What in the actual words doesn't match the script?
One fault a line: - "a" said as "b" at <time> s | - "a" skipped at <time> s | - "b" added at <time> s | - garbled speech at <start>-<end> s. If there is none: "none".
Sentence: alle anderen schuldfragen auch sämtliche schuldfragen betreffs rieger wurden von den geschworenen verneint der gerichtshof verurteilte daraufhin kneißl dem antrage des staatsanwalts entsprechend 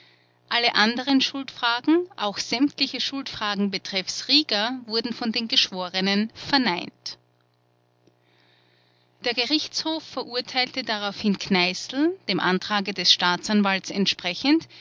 none